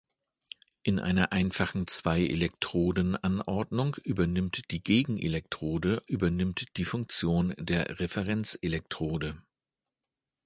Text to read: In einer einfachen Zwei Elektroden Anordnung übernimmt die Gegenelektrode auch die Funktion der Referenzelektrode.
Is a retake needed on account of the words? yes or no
yes